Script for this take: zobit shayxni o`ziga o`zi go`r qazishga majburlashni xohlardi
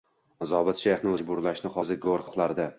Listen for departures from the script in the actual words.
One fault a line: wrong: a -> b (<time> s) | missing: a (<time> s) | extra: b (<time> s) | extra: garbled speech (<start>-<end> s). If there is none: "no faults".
wrong: o`ziga -> majburlashni (1.1 s)
missing: qazishga majburlashni (2.3 s)